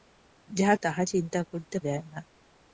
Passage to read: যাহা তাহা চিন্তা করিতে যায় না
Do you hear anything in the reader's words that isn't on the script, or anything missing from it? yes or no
no